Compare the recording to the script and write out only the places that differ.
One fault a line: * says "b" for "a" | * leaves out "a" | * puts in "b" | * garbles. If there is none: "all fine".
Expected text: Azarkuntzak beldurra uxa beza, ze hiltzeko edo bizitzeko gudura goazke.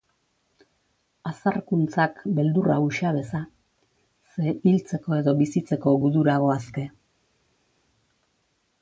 all fine